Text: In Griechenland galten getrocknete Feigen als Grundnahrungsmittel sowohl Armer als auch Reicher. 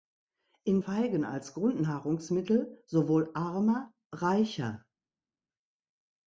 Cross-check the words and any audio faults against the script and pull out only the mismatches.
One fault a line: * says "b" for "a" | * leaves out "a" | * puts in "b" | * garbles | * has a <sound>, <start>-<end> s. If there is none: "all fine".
* leaves out "Griechenland galten getrocknete"
* leaves out "als auch"